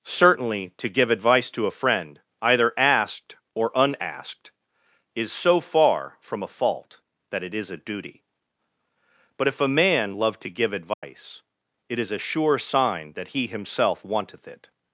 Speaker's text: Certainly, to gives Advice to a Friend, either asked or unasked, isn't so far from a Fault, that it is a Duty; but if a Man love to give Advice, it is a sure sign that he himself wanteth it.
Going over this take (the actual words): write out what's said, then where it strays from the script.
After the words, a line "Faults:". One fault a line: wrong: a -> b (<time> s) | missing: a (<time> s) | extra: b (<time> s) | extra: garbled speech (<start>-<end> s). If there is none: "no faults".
Certainly, to give Advice to a Friend, either asked or unasked, is so far from a Fault, that it is a Duty; but if a Man love to give Advice, it is a sure sign that he himself wanteth it.
Faults:
wrong: gives -> give (0.9 s)
wrong: isn't -> is (5.2 s)